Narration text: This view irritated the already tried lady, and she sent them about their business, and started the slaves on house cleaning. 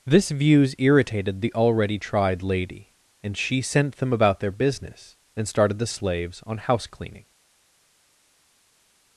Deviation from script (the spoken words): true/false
true